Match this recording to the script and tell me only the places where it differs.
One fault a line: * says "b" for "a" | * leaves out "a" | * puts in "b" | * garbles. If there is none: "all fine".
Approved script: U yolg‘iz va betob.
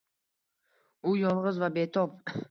all fine